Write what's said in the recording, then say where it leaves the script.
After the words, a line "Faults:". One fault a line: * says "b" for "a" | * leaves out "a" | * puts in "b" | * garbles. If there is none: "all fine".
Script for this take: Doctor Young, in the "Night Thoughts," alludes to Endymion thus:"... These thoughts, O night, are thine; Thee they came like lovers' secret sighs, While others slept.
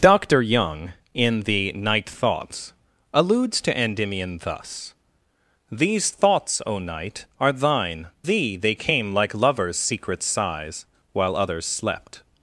Doctor Young, in the "Night Thoughts," alludes to Endymion thus:"... These thoughts, O night, are thine; Thee they came like lovers' secret sighs, While others slept.
Faults:
all fine